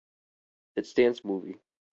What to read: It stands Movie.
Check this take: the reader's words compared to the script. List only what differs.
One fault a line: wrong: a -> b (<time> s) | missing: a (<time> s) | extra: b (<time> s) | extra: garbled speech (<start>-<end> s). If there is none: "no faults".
no faults